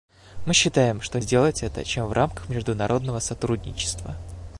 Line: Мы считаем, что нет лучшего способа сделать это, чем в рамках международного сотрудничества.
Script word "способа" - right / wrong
wrong